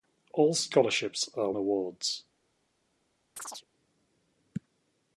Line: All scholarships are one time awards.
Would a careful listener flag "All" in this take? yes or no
no